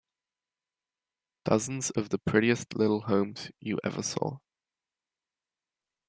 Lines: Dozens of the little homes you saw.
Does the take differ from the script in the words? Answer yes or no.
yes